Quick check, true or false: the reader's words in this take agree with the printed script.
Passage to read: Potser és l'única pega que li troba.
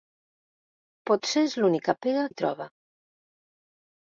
false